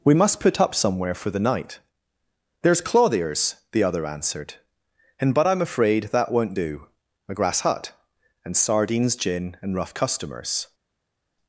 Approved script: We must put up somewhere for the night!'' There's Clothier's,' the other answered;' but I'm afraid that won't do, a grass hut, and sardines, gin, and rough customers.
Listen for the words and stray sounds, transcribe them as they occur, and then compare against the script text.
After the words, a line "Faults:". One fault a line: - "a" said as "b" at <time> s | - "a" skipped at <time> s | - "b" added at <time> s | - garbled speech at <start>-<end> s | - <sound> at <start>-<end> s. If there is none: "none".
We must put up somewhere for the night!'' There's Clothier's,' the other answered;' and but I'm afraid that won't do, a grass hut, and sardines, gin, and rough customers.
Faults:
- "and" added at 5.2 s